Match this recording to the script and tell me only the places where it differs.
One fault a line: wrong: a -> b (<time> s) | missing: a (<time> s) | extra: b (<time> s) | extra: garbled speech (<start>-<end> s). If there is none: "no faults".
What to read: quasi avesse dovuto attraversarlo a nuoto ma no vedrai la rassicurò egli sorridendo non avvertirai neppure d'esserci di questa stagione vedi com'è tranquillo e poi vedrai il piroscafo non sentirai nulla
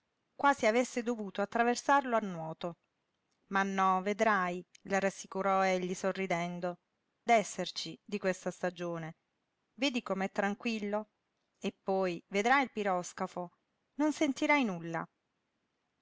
missing: non avvertirai neppure (6.8 s)